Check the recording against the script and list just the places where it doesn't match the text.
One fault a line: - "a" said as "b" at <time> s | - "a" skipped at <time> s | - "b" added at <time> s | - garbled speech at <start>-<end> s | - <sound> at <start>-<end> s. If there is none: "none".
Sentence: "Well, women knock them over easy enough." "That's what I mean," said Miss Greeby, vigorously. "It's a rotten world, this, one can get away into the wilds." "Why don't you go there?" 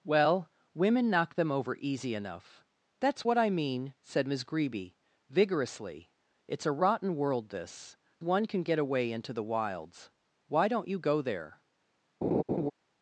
- laugh at 12.2-12.7 s